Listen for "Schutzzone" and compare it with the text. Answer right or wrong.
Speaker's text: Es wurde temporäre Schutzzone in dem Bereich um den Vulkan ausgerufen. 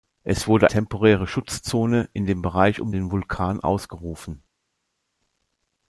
right